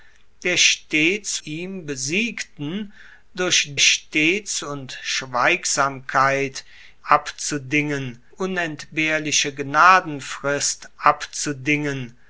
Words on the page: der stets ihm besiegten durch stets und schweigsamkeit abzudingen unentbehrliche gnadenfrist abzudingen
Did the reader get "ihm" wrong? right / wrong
right